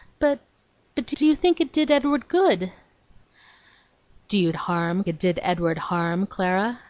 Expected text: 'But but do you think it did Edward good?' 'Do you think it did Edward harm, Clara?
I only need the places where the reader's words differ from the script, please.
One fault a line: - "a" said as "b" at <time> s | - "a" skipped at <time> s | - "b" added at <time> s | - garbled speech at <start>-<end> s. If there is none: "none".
- "do" added at 1.1 s
- "think" said as "harm" at 4.6 s